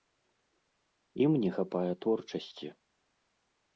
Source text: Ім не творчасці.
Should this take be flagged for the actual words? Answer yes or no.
yes